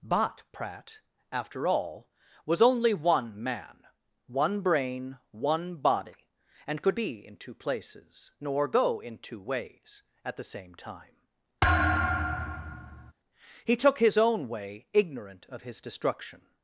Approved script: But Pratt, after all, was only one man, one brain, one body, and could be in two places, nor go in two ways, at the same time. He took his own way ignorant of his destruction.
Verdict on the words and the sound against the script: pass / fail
fail